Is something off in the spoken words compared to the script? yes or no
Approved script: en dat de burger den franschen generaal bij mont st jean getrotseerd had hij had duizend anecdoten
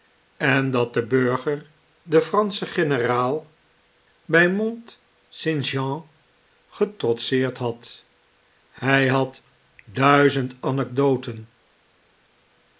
no